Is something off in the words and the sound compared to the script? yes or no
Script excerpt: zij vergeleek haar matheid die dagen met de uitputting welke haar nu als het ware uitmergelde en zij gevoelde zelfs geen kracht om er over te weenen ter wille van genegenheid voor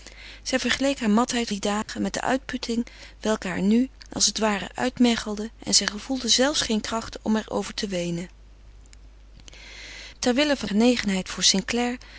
yes